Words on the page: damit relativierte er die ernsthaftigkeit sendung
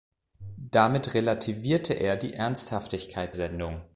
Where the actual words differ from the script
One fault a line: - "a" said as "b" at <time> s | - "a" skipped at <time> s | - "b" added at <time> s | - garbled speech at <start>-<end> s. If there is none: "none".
none